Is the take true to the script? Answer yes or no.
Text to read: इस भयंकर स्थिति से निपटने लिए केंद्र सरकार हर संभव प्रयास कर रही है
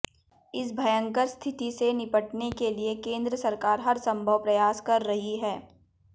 no